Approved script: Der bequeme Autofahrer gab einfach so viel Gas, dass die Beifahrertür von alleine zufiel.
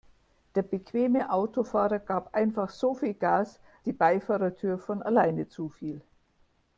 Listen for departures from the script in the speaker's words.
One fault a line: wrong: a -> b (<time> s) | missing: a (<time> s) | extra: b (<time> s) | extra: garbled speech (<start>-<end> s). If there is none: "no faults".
missing: dass (3.6 s)